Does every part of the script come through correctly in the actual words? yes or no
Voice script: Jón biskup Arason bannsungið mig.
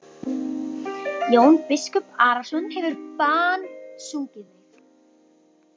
no